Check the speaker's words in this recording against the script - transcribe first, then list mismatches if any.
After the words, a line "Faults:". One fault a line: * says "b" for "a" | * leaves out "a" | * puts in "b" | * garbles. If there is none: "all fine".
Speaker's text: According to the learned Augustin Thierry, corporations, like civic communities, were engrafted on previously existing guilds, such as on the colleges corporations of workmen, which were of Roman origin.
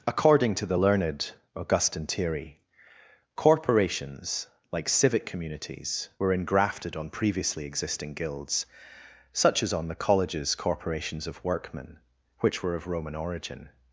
According to the learned Augustin Thierry, corporations, like civic communities, were engrafted on previously existing guilds, such as on the colleges corporations of workmen, which were of Roman origin.
Faults:
all fine